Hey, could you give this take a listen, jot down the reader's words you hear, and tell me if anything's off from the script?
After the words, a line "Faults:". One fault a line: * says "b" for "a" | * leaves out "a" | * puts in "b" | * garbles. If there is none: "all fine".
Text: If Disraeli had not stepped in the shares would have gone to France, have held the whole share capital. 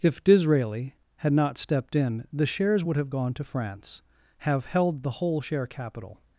If Disraeli had not stepped in the shares would have gone to France, have held the whole share capital.
Faults:
all fine